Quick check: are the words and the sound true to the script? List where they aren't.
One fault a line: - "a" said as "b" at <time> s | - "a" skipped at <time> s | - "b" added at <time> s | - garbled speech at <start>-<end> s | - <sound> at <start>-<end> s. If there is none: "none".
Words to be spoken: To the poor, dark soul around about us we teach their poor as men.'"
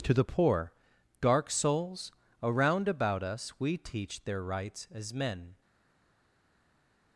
- "soul" said as "souls" at 1.5 s
- "poor" said as "rights" at 4.4 s